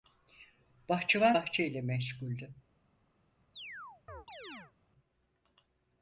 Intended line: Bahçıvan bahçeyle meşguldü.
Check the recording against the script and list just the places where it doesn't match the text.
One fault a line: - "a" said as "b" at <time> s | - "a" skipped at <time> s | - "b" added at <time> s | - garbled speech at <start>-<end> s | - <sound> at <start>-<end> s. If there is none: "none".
- chirp at 3.5-4.7 s